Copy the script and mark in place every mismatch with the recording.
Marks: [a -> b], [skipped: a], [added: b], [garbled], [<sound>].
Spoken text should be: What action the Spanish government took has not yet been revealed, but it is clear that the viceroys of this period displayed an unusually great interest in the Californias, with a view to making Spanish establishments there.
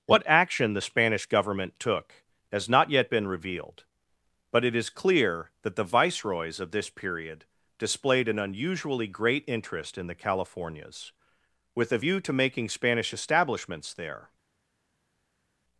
What action the Spanish government took has not yet been revealed, but it is clear that the viceroys of this period displayed an unusually great interest in the Californias, with a view to making Spanish establishments there.